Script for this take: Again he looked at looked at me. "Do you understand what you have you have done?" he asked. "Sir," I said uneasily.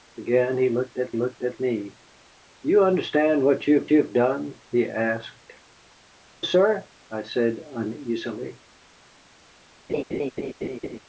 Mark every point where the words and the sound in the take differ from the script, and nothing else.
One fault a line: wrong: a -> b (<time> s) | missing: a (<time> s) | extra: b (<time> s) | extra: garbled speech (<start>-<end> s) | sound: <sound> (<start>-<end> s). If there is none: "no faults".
sound: laugh (9.9-11.0 s)